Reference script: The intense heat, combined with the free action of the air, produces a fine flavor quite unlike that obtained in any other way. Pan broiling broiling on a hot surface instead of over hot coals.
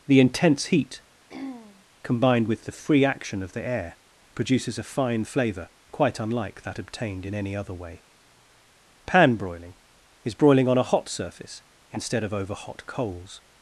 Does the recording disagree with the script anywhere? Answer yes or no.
yes